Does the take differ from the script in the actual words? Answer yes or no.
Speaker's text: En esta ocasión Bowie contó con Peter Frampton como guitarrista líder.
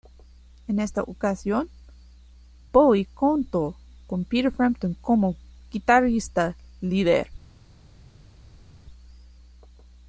no